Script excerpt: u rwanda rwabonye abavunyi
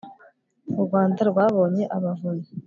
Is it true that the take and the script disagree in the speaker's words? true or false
false